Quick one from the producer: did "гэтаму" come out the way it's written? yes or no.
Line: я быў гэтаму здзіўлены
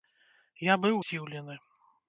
no